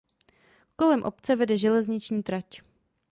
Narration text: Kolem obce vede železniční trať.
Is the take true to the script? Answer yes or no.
yes